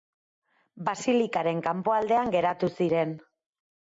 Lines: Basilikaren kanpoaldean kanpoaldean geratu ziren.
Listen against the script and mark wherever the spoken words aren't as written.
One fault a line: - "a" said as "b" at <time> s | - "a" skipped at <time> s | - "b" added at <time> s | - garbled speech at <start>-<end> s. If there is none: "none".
- "kanpoaldean" skipped at 2.3 s